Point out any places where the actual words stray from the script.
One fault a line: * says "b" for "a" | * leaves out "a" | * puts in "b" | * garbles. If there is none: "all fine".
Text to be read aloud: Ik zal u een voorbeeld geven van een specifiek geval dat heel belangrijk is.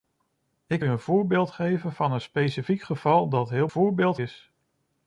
* leaves out "zal"
* says "voorbeeld" for "belangrijk"